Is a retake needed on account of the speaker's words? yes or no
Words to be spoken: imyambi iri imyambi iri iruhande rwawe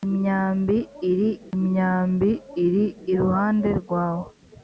no